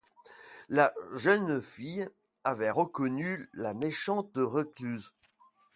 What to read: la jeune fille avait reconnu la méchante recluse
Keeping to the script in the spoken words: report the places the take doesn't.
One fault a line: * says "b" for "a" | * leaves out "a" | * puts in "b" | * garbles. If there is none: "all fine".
all fine